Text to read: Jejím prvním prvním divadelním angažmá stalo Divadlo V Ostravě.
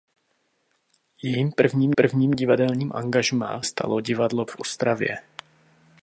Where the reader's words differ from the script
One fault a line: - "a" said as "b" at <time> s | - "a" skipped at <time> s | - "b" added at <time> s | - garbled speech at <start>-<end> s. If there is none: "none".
none